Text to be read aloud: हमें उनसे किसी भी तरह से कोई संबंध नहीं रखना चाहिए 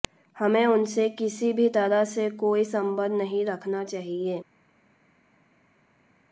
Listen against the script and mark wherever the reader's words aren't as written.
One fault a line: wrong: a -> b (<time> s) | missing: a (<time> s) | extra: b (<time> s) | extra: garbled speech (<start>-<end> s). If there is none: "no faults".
no faults